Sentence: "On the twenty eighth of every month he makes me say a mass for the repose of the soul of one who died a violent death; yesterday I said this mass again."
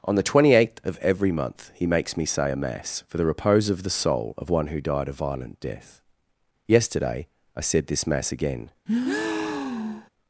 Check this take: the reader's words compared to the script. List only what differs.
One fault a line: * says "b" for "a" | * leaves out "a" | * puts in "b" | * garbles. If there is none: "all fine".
all fine